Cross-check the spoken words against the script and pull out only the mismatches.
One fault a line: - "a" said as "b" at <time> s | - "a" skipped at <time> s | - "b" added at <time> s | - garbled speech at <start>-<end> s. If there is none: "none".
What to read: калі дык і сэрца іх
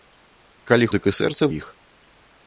none